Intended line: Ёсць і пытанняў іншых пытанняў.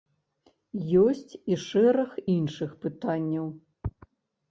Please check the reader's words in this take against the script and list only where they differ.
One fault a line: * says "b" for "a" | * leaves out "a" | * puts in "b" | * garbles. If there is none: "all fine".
* says "шэраг" for "пытанняў"